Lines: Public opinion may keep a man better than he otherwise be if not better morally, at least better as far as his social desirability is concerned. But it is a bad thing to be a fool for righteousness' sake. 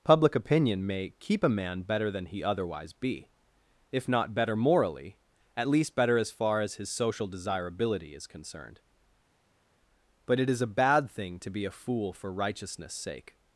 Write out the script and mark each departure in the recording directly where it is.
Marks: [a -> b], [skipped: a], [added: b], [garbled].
Public opinion may keep a man better than he otherwise be if not better morally, at least better as far as his social desirability is concerned. But it is a bad thing to be a fool for righteousness' sake.